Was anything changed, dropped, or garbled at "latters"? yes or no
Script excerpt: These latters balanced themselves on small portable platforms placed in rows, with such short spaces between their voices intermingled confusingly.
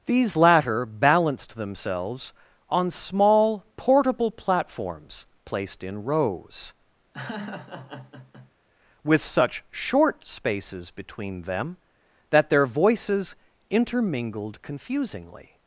yes